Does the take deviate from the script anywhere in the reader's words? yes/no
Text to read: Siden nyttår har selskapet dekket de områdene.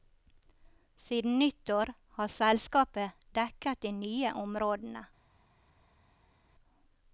yes